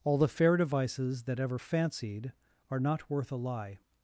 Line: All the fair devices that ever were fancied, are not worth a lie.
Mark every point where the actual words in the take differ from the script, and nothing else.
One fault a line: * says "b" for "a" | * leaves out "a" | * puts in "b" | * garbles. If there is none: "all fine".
* leaves out "were"